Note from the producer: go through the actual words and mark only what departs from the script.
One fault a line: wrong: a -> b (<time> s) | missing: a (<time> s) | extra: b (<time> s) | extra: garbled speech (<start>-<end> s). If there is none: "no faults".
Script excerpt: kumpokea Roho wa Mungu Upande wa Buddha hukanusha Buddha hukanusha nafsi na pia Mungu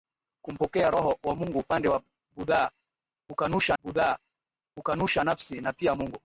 no faults